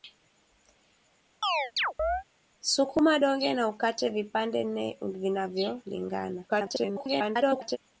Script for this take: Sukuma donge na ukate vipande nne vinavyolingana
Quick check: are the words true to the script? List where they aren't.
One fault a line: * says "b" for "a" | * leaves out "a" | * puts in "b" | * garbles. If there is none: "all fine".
* garbles